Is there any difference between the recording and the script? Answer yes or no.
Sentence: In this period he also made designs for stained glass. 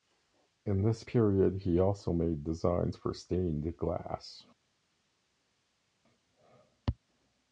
no